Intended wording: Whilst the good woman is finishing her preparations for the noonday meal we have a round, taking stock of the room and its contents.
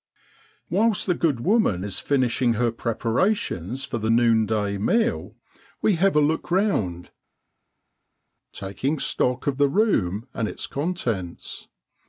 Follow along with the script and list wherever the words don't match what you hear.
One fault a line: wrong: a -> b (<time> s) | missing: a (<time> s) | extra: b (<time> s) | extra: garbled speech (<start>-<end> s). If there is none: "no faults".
extra: look (6.2 s)